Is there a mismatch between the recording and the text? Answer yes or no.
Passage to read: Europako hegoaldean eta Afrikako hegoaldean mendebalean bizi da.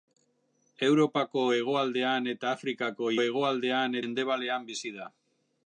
no